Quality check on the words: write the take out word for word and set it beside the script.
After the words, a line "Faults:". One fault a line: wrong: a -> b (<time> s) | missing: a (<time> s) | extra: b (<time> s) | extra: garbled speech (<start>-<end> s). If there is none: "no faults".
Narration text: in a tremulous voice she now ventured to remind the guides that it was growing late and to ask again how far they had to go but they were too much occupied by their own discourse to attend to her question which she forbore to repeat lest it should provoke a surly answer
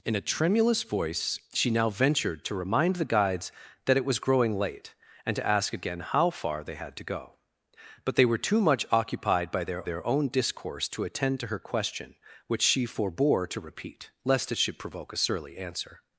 in a tremulous voice she now ventured to remind the guides that it was growing late and to ask again how far they had to go but they were too much occupied by their their own discourse to attend to her question which she forbore to repeat lest it should provoke a surly answer
Faults:
extra: their (9.8 s)